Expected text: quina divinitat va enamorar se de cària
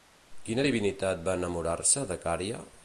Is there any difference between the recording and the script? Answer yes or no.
no